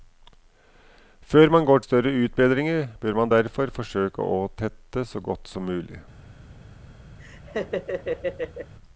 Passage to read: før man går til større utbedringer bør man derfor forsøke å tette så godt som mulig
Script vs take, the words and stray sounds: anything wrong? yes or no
yes